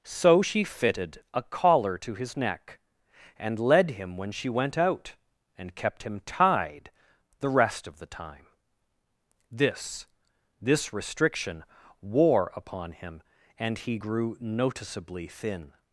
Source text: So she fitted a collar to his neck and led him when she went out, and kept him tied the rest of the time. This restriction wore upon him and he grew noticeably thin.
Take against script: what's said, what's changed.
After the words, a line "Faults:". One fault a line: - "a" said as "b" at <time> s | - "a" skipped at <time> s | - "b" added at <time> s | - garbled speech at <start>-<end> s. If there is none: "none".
So she fitted a collar to his neck and led him when she went out, and kept him tied the rest of the time. This This restriction wore upon him and he grew noticeably thin.
Faults:
- "This" added at 10.6 s